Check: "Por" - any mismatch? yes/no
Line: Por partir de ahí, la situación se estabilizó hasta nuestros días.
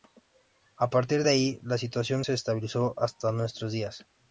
yes